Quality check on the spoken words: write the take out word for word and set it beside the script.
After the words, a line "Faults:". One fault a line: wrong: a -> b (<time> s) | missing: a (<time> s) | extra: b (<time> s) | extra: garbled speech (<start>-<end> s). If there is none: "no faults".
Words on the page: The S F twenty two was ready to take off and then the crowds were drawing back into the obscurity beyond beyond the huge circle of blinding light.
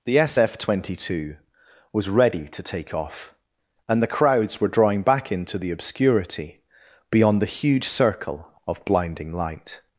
The S F twenty two was ready to take off and the crowds were drawing back into the obscurity beyond the huge circle of blinding light.
Faults:
missing: then (4.0 s)
missing: beyond (7.4 s)